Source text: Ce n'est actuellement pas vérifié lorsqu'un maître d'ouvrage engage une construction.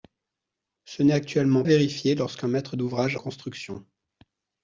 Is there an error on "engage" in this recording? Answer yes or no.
yes